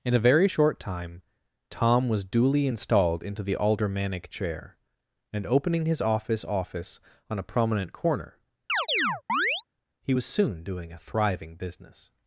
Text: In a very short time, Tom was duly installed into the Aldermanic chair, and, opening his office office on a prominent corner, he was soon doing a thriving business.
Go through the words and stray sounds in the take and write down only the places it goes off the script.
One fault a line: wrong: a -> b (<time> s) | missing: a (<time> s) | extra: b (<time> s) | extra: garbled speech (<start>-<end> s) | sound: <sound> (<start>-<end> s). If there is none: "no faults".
sound: chirp (8.7-9.6 s)